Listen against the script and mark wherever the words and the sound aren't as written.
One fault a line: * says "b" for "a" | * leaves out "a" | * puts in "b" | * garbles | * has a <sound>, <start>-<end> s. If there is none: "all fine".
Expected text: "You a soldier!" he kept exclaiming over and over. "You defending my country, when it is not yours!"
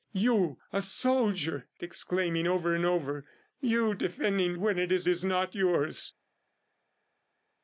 * leaves out "he kept"
* leaves out "my country"
* puts in "is"